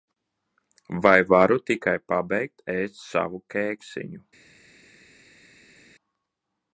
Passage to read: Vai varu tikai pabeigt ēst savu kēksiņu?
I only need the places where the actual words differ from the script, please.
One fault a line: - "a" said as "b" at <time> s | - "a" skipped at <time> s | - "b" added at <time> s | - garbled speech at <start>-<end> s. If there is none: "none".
none